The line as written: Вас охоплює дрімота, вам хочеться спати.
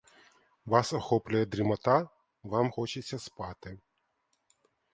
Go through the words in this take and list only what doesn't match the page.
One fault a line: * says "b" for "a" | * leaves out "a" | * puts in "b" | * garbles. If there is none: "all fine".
all fine